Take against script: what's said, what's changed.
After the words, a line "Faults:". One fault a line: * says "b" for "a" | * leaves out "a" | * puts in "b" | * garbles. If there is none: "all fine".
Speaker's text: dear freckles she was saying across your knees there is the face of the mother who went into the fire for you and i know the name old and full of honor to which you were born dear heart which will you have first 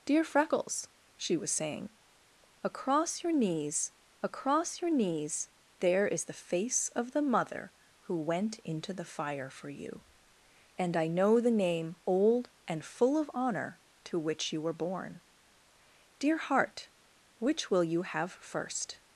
dear freckles she was saying across your knees across your knees there is the face of the mother who went into the fire for you and i know the name old and full of honor to which you were born dear heart which will you have first
Faults:
* puts in "across your knees"